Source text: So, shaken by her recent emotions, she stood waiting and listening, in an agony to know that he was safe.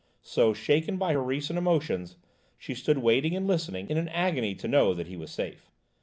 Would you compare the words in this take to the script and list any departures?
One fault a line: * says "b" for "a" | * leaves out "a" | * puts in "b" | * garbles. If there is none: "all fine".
all fine